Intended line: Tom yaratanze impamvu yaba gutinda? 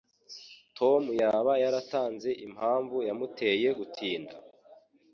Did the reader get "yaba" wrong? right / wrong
wrong